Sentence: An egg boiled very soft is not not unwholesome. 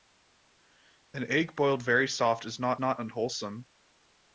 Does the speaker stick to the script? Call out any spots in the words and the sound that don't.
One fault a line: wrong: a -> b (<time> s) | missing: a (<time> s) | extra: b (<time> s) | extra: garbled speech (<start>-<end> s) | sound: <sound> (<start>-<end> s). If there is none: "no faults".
no faults